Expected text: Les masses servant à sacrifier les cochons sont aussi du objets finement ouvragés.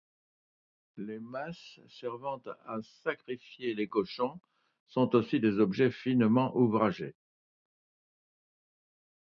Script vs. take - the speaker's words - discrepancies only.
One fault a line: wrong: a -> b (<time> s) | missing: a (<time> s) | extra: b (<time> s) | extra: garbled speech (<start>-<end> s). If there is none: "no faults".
wrong: du -> des (5.4 s)